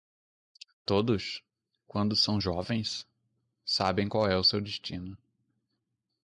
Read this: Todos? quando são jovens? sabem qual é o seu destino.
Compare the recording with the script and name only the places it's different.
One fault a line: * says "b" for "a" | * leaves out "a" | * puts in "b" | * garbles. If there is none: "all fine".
all fine